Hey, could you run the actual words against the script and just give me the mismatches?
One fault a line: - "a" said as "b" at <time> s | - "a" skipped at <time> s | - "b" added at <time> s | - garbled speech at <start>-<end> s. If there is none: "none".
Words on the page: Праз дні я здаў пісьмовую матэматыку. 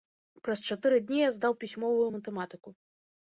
- "чатыры" added at 0.8 s